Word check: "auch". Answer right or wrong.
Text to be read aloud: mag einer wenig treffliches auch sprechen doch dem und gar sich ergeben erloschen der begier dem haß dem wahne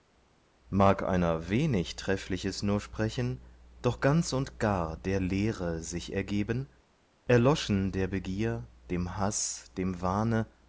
wrong